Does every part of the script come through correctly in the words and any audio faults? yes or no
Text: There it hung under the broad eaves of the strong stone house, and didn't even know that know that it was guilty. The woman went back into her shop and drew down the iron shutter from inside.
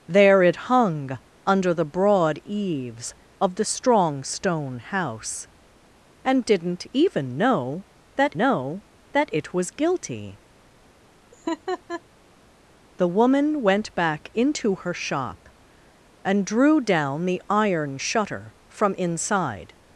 no